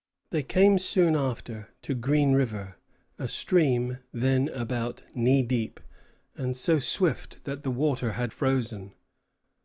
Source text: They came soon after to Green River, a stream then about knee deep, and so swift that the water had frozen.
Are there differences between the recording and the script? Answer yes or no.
no